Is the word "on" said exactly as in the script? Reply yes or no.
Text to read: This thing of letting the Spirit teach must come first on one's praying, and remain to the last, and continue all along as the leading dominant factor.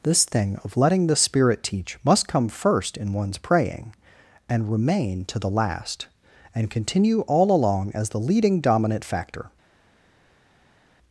no